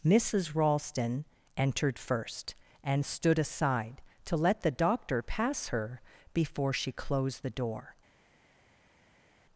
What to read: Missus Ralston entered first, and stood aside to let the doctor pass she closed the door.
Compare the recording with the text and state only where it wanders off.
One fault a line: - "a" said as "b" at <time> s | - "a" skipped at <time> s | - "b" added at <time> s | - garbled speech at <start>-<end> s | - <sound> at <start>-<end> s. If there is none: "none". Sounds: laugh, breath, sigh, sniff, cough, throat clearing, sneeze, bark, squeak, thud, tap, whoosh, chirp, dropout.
- "her before" added at 5.7 s